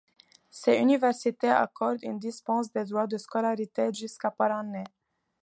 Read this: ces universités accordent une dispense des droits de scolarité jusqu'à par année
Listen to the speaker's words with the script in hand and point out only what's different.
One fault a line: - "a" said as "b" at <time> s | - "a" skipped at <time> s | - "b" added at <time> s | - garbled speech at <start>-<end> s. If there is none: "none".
none